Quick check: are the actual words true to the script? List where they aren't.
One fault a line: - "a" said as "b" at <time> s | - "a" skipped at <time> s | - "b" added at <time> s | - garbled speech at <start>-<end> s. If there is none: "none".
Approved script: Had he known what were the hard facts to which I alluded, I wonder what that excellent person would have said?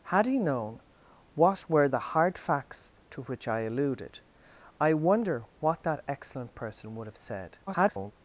- garbled speech at 7.7-8.1 s